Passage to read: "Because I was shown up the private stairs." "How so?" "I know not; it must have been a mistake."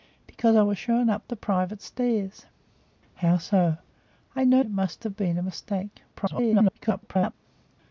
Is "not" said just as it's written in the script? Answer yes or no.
no